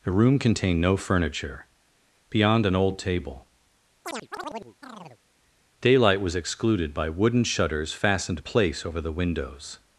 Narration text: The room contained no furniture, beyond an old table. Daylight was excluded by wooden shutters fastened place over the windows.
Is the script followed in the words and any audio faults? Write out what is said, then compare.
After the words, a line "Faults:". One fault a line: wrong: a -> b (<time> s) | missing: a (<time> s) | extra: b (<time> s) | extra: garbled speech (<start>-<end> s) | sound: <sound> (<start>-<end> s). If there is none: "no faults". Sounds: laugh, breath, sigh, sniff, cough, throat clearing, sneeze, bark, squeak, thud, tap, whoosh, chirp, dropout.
The room contained no furniture, beyond an old table. Daylight was excluded by wooden shutters fastened place over the windows.
Faults:
sound: chirp (4.0-5.2 s)